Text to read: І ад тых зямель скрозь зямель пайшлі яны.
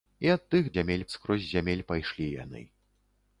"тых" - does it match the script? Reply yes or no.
yes